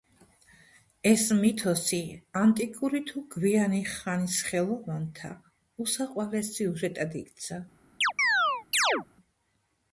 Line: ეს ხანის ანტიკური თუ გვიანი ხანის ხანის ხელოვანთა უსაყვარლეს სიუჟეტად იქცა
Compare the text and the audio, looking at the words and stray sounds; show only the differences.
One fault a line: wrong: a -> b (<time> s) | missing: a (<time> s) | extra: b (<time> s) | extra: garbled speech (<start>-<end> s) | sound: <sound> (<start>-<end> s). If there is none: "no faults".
wrong: ხანის -> მითოსი (1.4 s)
missing: ხანის (4.4 s)
sound: chirp (8.0-9.1 s)